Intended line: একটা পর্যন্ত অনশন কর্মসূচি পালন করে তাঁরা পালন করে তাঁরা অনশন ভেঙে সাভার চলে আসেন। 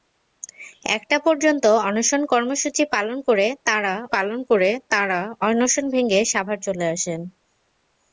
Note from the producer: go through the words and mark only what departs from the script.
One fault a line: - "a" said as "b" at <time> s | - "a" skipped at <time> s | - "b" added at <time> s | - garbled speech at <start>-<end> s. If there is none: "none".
none